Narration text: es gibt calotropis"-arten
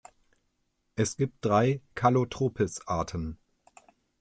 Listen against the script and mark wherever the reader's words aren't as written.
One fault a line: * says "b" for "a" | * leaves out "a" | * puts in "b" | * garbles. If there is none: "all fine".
* puts in "drei"